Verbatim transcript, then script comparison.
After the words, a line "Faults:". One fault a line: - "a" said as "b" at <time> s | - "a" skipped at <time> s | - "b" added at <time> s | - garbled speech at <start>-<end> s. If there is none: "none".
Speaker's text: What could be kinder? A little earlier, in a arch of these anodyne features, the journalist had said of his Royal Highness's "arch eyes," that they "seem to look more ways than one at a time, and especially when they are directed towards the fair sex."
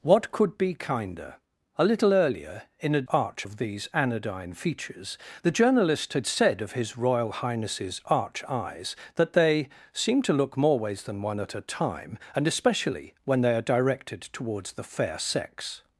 What could be kinder? A little earlier, in a arch of these anodyne features, the journalist had said of his Royal Highness's "arch eyes," that they "seem to look more ways than one at a time, and especially when they are directed towards the fair sex."
Faults:
none